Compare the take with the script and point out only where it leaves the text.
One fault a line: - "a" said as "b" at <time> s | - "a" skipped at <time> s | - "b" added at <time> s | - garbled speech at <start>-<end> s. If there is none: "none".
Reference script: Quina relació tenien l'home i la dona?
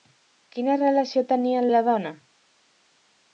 - "l'home" skipped at 1.7 s